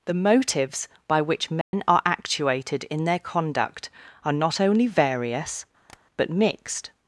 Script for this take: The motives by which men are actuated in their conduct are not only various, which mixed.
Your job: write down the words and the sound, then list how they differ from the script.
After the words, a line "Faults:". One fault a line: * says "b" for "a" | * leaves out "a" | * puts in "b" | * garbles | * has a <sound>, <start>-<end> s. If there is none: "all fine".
The motives by which men are actuated in their conduct are not only various, but mixed.
Faults:
* has a dropout, 1.6-1.7 s
* has a tap, 5.9-6.0 s
* says "but" for "which"